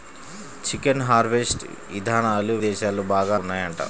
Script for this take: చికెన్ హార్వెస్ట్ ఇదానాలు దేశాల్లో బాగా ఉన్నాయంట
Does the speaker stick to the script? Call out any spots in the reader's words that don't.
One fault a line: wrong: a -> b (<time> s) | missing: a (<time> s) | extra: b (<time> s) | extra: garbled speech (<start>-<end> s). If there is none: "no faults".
no faults